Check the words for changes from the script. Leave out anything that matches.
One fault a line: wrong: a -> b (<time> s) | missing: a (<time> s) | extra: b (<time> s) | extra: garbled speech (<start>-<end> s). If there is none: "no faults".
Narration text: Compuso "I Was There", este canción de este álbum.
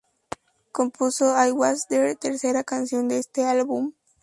wrong: este -> tercera (2.1 s)